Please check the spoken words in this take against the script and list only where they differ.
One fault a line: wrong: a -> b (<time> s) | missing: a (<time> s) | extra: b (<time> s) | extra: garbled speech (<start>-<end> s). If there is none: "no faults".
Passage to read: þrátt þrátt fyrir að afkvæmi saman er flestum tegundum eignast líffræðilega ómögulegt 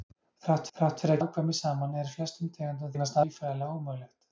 no faults